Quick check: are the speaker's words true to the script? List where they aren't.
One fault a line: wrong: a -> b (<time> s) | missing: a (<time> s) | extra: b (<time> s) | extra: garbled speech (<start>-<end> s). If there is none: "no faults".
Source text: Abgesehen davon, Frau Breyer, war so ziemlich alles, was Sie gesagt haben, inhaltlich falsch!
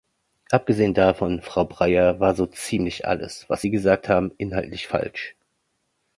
no faults